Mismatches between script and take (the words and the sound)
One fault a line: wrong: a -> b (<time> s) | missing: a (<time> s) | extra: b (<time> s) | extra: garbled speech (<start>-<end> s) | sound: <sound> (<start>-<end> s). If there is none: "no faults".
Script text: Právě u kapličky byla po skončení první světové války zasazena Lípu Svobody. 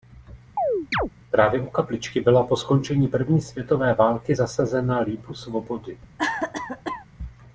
sound: chirp (0.6-1.1 s)
sound: cough (6.2-7.1 s)